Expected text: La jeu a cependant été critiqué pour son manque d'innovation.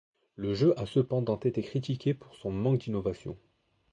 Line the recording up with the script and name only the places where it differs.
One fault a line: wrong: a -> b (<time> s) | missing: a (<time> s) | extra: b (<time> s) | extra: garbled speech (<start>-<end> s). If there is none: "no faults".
wrong: La -> Le (0.3 s)